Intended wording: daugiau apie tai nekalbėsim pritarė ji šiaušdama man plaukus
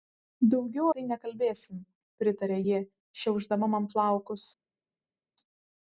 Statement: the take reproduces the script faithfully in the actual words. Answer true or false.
false